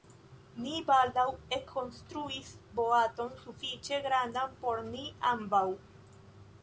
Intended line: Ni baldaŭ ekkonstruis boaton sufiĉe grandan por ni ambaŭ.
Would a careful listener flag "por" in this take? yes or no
no